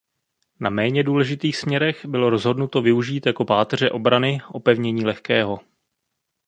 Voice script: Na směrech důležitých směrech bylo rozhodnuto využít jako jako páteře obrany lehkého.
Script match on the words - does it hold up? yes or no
no